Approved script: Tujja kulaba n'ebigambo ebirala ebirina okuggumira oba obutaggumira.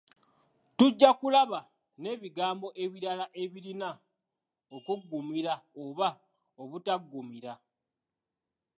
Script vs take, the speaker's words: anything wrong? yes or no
no